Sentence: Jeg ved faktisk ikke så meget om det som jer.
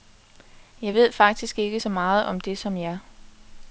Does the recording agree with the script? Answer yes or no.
yes